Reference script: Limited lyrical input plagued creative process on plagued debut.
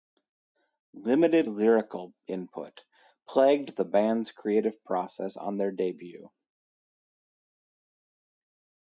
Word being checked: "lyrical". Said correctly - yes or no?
yes